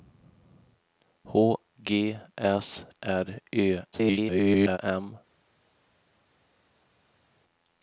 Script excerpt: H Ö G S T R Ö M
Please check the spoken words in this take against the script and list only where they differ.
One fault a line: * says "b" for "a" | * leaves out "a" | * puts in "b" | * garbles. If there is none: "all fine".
* leaves out "Ö"
* leaves out "T"
* garbles